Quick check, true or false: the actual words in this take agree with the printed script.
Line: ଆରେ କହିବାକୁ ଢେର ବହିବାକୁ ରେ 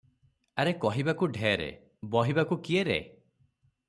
false